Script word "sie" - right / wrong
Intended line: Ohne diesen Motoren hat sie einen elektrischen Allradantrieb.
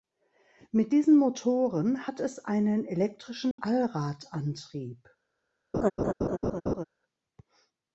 wrong